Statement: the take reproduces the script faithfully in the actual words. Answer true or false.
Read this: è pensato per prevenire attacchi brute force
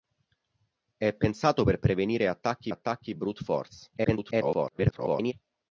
false